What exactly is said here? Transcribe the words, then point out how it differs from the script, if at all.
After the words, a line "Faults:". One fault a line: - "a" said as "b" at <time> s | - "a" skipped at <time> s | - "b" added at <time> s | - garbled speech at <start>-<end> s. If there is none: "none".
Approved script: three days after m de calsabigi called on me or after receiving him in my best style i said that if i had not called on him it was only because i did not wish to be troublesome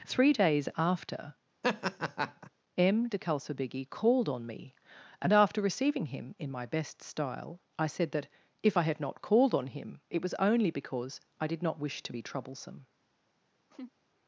three days after m de calsabigi called on me and after receiving him in my best style i said that if i had not called on him it was only because i did not wish to be troublesome
Faults:
- "or" said as "and" at 5.2 s